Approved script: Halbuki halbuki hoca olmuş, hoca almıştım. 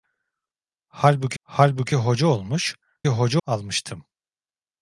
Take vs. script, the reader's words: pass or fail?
pass